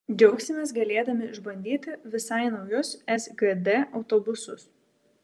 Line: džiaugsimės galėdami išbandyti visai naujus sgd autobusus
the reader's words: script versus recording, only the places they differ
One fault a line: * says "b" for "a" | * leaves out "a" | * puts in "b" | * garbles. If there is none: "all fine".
all fine